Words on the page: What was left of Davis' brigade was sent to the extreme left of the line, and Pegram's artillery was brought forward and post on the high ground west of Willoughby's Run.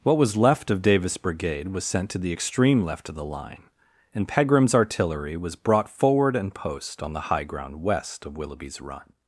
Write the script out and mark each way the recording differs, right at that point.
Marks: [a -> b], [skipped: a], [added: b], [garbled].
What was left of Davis' brigade was sent to the extreme left of the line, and Pegram's artillery was brought forward and post on the high ground west of Willoughby's Run.